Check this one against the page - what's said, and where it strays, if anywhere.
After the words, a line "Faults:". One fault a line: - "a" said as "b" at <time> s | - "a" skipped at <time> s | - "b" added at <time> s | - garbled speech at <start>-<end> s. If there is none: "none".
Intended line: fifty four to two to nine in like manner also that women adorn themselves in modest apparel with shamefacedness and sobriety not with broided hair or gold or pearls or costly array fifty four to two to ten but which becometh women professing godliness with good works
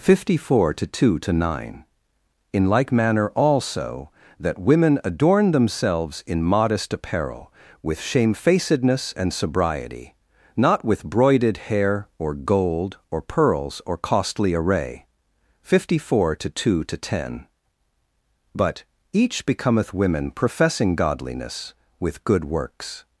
fifty four to two to nine in like manner also that women adorn themselves in modest apparel with shamefacedness and sobriety not with broided hair or gold or pearls or costly array fifty four to two to ten but each becometh women professing godliness with good works
Faults:
- "which" said as "each" at 19.1 s